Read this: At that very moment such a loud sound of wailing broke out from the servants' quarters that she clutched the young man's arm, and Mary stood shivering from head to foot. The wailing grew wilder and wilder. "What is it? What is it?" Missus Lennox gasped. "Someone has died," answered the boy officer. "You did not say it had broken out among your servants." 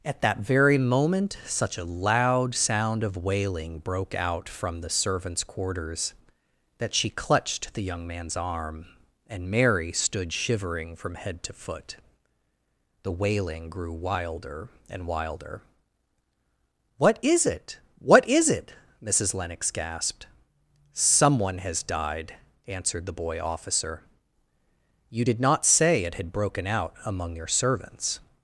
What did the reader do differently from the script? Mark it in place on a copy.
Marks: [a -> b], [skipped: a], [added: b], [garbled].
At that very moment such a loud sound of wailing broke out from the servants' quarters that she clutched the young man's arm, and Mary stood shivering from head to foot. The wailing grew wilder and wilder. "What is it? What is it?" Missus Lennox gasped. "Someone has died," answered the boy officer. "You did not say it had broken out among your servants."